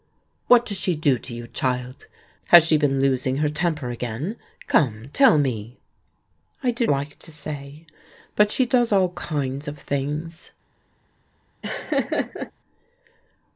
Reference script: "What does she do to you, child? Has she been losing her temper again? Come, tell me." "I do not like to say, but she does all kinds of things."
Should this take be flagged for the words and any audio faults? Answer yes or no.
yes